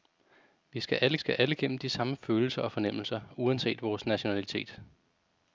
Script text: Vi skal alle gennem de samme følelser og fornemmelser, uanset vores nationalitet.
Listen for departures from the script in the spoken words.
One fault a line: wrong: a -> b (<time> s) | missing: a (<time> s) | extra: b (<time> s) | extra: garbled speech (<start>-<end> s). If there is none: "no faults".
extra: skal alle (1.2 s)